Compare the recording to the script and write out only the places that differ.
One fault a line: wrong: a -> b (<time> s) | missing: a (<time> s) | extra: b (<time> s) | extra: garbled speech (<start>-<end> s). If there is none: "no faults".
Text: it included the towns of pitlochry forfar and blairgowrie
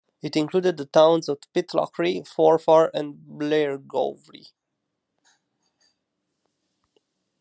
no faults